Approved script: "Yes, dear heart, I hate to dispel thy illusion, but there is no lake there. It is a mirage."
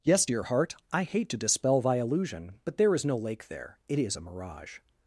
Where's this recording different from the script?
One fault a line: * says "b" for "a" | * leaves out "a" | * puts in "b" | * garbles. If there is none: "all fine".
all fine